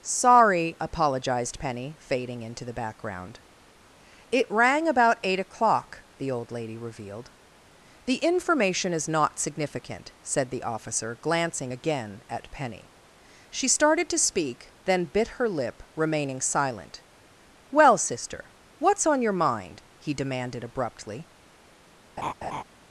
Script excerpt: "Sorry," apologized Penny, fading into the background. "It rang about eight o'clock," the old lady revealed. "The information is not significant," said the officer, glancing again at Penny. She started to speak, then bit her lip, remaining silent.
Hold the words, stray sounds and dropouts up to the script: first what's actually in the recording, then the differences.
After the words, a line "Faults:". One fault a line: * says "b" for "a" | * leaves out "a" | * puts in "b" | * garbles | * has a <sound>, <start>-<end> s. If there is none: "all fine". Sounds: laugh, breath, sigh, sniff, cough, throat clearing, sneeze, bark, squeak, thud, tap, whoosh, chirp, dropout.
"Sorry," apologized Penny, fading into the background. "It rang about eight o'clock," the old lady revealed. "The information is not significant," said the officer, glancing again at Penny. She started to speak, then bit her lip, remaining silent. "Well, sister, what's on your mind?" he demanded abruptly
Faults:
* puts in "Well sister what's on your mind he demanded abruptly"
* has a laugh, 22.2-22.6 s